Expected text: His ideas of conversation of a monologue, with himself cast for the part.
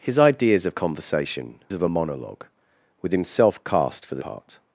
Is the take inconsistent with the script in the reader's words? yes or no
no